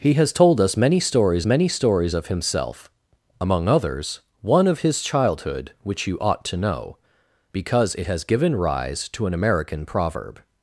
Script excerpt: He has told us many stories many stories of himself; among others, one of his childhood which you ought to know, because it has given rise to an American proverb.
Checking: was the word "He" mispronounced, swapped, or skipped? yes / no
no